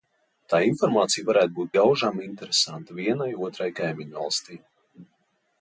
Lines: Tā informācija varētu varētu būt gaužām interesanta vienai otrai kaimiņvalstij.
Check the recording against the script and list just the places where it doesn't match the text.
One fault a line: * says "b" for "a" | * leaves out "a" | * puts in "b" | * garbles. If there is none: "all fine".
* leaves out "varētu"